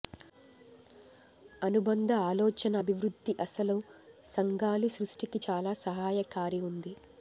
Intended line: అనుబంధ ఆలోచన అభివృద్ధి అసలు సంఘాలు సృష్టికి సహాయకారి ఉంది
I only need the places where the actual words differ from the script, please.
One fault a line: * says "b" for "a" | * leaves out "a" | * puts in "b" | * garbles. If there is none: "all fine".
* puts in "చాలా"